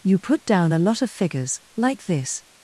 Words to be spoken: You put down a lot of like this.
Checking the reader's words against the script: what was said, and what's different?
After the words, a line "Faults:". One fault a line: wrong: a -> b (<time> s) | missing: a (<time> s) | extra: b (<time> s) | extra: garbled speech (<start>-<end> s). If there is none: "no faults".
You put down a lot of figures, like this.
Faults:
extra: figures (1.1 s)